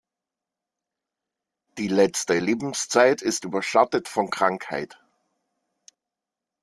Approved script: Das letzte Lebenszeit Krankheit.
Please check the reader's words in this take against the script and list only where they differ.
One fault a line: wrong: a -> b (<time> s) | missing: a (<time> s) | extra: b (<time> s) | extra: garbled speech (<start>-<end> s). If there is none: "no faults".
wrong: Das -> Die (1.8 s)
extra: ist überschattet von (3.2 s)